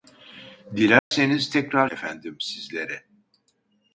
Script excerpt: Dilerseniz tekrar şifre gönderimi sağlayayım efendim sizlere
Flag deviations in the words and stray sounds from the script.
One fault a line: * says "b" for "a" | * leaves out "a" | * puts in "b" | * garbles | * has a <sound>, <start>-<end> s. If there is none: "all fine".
* has a dropout, 1.0-1.1 s
* leaves out "şifre gönderimi sağlayayım"